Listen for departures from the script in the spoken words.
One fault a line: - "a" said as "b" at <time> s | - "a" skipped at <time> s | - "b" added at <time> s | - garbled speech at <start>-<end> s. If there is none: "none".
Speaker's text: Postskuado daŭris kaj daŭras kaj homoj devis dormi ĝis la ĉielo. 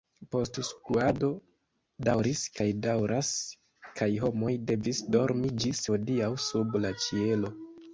- "hodiaŭ sub" added at 5.9 s